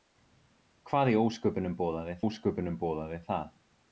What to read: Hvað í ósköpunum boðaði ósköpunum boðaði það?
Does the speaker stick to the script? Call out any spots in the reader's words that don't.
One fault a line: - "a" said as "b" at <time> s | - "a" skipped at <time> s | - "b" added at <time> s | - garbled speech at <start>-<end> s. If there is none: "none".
none